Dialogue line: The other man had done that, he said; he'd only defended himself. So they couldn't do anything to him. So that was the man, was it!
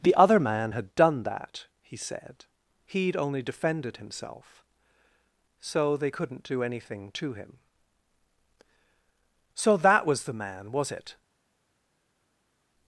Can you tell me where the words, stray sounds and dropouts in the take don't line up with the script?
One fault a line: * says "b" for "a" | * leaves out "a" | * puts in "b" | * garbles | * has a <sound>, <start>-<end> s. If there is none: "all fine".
all fine